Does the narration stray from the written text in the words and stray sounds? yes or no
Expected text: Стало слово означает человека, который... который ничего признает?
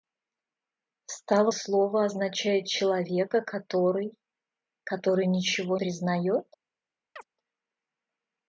yes